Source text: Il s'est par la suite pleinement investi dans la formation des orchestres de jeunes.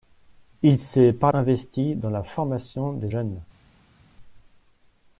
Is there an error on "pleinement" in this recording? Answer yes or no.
yes